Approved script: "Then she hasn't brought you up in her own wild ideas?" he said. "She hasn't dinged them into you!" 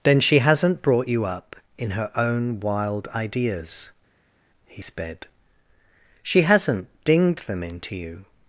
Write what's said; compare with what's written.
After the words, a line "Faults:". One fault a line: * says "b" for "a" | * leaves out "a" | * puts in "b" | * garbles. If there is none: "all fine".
"Then she hasn't brought you up in her own wild ideas?" he sped. "She hasn't dinged them into you!"
Faults:
* says "sped" for "said"